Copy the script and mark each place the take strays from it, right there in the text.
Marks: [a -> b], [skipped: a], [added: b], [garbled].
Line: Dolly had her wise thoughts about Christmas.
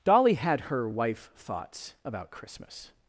Dolly had her [wise -> wife] thoughts about Christmas.